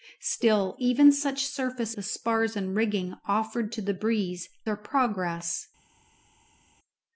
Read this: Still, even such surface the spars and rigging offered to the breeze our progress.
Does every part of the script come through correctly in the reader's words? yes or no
yes